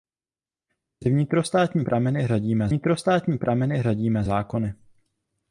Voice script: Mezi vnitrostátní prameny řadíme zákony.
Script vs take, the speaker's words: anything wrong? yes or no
yes